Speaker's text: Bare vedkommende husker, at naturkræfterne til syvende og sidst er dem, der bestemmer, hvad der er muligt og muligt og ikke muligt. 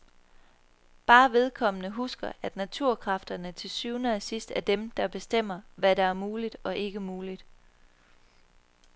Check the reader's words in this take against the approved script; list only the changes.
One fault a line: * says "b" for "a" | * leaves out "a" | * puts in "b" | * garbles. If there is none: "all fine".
* leaves out "muligt og"